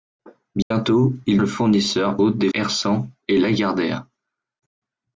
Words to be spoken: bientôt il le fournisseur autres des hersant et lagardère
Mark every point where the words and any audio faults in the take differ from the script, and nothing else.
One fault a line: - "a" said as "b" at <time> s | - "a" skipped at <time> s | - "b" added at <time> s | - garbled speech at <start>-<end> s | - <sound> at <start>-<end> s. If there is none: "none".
- dropout at 0.6-0.7 s